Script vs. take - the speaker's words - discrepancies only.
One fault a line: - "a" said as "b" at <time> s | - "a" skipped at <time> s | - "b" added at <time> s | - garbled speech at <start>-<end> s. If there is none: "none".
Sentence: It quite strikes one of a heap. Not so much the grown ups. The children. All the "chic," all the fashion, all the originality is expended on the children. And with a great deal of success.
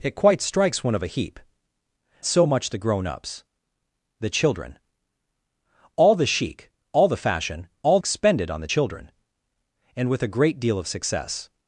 - "Not" skipped at 1.4 s
- "the originality is" skipped at 8.0 s